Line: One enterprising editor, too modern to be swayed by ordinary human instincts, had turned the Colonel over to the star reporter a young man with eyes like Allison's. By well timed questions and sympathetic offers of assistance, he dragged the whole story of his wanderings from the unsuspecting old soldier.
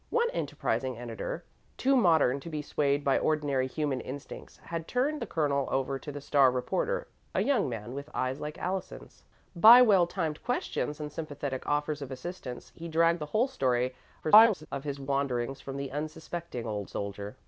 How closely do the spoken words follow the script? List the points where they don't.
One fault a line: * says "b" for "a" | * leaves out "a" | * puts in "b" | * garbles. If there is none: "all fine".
* garbles